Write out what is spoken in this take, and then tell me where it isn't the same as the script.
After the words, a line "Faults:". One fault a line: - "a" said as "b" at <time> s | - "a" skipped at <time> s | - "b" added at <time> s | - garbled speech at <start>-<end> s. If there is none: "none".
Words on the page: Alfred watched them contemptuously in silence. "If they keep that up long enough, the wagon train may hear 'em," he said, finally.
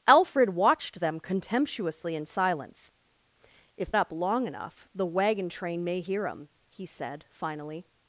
Alfred watched them contemptuously in silence. "If up long enough, the wagon train may hear 'em," he said, finally.
Faults:
- "they keep that" skipped at 3.9 s